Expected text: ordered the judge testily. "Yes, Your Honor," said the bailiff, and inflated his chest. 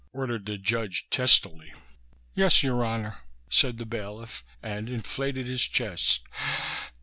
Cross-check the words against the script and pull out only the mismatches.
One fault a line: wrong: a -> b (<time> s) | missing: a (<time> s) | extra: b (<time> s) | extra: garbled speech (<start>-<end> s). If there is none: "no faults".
no faults